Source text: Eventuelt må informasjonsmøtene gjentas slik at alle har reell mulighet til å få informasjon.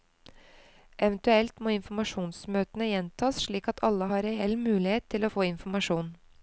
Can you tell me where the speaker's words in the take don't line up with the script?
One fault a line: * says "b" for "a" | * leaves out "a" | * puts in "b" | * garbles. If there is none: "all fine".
all fine